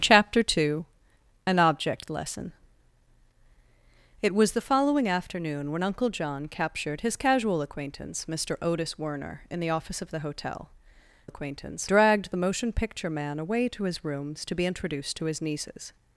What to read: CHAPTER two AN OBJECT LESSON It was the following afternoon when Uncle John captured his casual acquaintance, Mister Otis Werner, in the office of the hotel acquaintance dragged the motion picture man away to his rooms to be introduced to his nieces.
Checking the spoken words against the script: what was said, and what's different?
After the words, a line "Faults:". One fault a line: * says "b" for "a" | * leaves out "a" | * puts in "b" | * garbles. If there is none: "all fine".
CHAPTER two AN OBJECT LESSON It was the following afternoon when Uncle John captured his casual acquaintance, Mister Otis Werner, in the office of the hotel acquaintance dragged the motion picture man away to his rooms to be introduced to his nieces.
Faults:
all fine